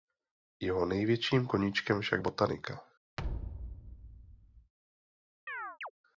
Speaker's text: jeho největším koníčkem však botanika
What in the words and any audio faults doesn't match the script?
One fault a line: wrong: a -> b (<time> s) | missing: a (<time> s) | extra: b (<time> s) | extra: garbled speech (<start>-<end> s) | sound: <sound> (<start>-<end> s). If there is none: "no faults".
sound: thud (3.2-4.7 s)
sound: chirp (5.5-5.9 s)